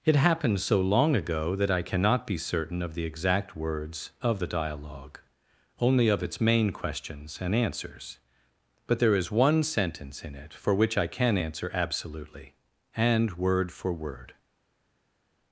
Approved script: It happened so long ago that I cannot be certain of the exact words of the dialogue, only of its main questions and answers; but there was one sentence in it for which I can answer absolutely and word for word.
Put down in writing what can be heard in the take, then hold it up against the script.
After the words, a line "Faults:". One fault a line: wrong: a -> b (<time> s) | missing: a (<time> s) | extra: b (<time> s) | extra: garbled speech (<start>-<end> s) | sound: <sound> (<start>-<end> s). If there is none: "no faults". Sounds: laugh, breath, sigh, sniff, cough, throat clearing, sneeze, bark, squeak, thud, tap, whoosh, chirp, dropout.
It happened so long ago that I cannot be certain of the exact words of the dialogue, only of its main questions and answers; but there is one sentence in it for which I can answer absolutely and word for word.
Faults:
wrong: was -> is (9.2 s)